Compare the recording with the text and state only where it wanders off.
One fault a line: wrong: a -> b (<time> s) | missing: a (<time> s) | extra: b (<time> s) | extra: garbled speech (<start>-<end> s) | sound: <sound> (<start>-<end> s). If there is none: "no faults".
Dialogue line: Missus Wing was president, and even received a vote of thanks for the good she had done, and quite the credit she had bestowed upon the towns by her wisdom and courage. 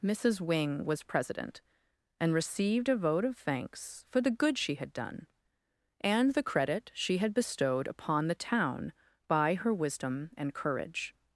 missing: even (2.3 s)
missing: quite (6.3 s)
wrong: towns -> town (8.3 s)